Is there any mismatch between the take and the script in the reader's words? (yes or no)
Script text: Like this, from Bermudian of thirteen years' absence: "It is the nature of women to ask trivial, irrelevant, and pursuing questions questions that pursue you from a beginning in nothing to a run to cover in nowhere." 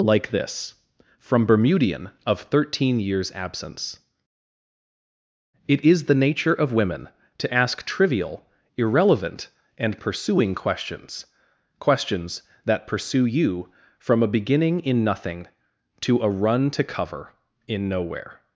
no